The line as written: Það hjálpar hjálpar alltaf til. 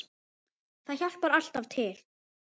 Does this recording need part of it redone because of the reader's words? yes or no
yes